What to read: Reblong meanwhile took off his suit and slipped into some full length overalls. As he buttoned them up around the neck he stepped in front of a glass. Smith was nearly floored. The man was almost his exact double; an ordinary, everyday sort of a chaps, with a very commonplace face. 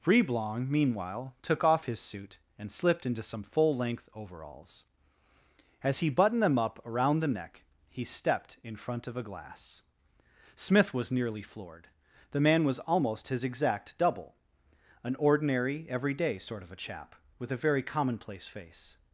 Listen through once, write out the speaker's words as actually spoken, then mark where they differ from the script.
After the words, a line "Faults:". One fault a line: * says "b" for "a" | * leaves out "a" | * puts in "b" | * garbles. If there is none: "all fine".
Reblong meanwhile took off his suit and slipped into some full length overalls. As he buttoned them up around the neck he stepped in front of a glass. Smith was nearly floored. The man was almost his exact double; an ordinary, everyday sort of a chap, with a very commonplace face.
Faults:
* says "chap" for "chaps"